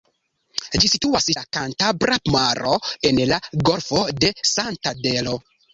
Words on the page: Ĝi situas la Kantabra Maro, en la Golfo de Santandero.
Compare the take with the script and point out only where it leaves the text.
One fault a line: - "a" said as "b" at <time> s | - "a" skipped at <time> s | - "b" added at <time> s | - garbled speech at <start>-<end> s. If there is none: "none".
none